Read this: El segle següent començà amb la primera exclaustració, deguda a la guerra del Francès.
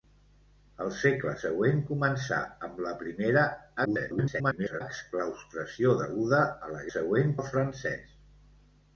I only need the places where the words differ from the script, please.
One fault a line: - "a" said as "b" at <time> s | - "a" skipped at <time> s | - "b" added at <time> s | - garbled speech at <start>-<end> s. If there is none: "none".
- garbled speech at 3.8-4.8 s
- "guerra" said as "següent" at 6.9 s